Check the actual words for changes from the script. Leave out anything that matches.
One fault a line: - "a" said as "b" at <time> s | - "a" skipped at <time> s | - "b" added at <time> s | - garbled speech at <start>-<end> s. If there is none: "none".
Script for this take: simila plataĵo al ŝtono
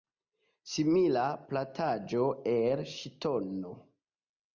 - "al" said as "el" at 2.5 s